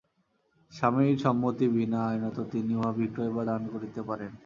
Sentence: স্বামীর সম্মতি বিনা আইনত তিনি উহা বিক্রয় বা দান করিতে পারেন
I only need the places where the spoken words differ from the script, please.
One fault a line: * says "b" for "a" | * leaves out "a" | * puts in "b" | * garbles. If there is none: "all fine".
all fine